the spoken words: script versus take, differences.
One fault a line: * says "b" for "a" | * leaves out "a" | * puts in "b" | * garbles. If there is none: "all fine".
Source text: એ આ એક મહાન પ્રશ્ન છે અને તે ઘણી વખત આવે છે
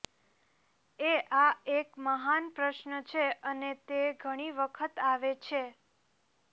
all fine